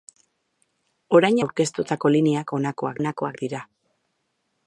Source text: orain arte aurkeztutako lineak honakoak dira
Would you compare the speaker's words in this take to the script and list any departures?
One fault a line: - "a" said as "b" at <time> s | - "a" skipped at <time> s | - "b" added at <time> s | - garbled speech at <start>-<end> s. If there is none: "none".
- "arte" skipped at 1.4 s
- "honakoak" added at 3.0 s